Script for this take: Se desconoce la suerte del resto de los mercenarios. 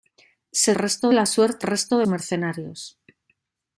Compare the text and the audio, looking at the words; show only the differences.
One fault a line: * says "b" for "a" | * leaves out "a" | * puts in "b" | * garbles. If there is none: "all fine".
* says "resto" for "desconoce"
* leaves out "del"
* leaves out "los"